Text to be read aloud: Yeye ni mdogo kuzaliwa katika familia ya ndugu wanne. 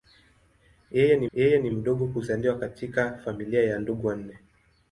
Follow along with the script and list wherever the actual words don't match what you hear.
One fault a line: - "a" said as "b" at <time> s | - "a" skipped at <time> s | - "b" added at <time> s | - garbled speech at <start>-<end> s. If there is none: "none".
- "yeye ni" added at 1.3 s